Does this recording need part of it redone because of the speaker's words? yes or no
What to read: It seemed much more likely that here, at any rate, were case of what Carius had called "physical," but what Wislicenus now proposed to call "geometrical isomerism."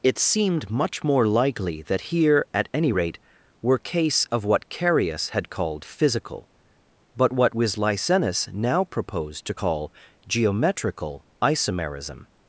no